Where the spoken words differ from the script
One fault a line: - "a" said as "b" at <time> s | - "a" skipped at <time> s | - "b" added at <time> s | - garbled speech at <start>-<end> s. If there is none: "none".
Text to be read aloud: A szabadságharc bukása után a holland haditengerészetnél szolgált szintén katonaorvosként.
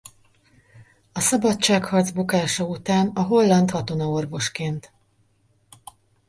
- "haditengerészetnél szolgált szintén" skipped at 3.7 s